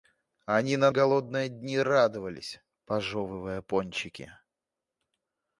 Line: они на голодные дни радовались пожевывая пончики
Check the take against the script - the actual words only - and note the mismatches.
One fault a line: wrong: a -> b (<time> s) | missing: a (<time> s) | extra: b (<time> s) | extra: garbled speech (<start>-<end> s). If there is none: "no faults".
no faults